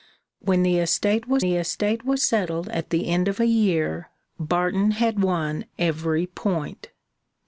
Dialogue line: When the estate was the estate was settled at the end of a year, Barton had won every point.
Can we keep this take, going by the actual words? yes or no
yes